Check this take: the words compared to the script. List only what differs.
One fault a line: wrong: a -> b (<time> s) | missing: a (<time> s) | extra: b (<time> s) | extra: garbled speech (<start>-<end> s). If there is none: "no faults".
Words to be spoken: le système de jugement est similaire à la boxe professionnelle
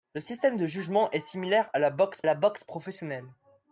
extra: la boxe (2.2 s)